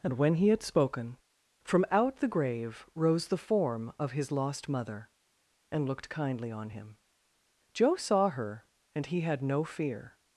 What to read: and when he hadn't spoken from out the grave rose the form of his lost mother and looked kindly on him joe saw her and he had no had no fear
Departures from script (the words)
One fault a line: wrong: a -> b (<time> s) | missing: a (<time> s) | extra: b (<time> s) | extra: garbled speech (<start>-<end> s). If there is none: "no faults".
wrong: hadn't -> had (0.5 s)
missing: had no (9.6 s)